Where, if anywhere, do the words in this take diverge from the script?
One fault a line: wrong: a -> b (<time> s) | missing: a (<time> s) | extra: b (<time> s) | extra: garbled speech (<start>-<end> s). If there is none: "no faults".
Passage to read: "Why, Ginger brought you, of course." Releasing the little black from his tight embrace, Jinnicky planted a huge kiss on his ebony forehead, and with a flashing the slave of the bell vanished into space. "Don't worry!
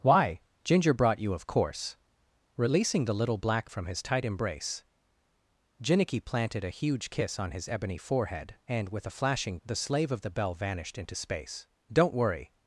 no faults